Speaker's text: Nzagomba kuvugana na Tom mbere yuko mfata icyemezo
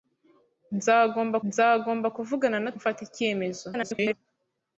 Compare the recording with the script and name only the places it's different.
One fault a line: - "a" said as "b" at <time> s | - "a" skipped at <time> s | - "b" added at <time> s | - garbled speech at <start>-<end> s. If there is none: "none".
- "nzagomba" added at 1.5 s
- "Tom mbere yuko" skipped at 2.7 s
- garbled speech at 3.7-4.1 s